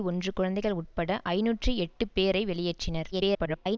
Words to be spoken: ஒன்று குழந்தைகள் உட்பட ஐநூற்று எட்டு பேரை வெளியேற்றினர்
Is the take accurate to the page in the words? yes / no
no